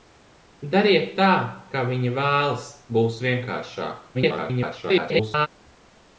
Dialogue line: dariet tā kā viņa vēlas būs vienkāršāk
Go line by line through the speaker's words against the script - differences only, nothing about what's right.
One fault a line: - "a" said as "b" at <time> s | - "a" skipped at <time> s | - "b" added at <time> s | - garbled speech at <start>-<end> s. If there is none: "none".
- garbled speech at 4.1-5.5 s